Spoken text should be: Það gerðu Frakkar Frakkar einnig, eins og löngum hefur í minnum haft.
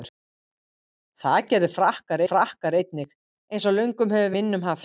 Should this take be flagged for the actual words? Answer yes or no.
no